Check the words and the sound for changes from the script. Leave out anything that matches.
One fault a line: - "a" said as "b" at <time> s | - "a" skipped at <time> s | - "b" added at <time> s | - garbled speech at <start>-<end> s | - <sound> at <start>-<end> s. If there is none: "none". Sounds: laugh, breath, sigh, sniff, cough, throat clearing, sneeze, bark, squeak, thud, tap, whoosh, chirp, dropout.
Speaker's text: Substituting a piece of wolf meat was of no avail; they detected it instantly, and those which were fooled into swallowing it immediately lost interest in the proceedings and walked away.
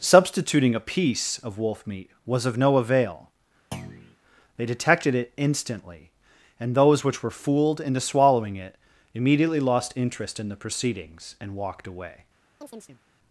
- thud at 3.7-4.2 s
- chirp at 12.6-13.0 s